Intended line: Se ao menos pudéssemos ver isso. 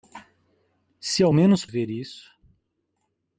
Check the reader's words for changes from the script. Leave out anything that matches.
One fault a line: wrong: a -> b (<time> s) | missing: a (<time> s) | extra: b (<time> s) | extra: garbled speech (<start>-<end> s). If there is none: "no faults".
missing: pudéssemos (1.7 s)